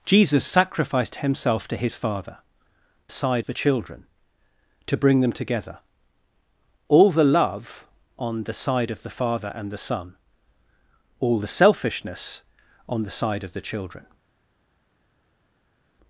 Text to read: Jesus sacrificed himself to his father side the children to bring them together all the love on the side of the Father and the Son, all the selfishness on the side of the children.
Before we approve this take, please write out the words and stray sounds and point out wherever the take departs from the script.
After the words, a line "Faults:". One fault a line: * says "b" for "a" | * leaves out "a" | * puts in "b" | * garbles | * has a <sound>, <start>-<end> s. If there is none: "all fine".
Jesus sacrificed himself to his father side the children to bring them together all the love on the side of the Father and the Son, all the selfishness on the side of the children.
Faults:
all fine